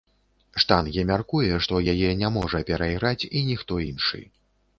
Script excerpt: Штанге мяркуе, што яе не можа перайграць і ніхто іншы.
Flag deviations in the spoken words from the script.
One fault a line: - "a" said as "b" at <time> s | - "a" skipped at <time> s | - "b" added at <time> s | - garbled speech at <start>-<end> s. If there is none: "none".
none